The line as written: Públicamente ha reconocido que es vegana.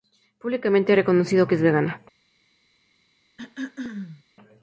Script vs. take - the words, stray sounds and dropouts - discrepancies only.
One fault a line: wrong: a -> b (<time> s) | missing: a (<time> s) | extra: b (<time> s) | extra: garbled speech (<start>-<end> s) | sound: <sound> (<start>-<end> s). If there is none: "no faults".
sound: throat clearing (3.4-4.2 s)